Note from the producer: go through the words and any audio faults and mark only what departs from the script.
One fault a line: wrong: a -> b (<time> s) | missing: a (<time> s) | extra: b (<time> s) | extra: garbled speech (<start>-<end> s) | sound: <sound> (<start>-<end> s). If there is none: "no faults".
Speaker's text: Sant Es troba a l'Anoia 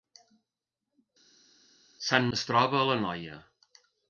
no faults